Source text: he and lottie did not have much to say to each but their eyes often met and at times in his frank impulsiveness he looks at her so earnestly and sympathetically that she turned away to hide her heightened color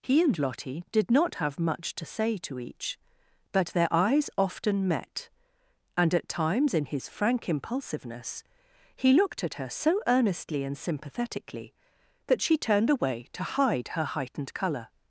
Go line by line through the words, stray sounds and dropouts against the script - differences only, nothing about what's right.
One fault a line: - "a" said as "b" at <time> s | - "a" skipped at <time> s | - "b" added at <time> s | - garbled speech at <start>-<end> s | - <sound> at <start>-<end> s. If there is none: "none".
- "looks" said as "looked" at 9.1 s